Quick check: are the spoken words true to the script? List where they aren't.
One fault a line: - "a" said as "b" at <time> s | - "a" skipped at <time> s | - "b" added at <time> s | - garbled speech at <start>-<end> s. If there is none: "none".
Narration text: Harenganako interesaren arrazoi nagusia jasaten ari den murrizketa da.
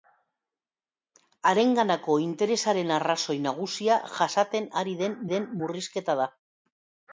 - "den" added at 5.3 s